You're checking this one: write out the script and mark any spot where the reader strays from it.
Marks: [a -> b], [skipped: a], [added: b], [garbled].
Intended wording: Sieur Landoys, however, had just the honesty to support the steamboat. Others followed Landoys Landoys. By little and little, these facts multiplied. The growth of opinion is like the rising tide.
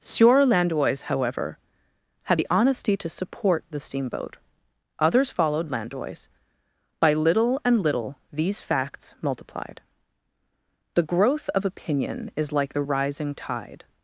Sieur Landoys, however, had [skipped: just] the honesty to support the steamboat. Others followed Landoys [skipped: Landoys.] By little and little, these facts multiplied. The growth of opinion is like the rising tide.